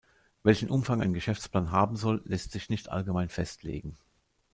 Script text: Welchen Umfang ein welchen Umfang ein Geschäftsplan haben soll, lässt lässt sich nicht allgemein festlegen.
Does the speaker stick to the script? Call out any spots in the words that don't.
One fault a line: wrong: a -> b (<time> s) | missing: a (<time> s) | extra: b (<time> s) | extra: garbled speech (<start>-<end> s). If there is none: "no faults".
missing: welchen Umfang ein (1.1 s)
missing: lässt (2.5 s)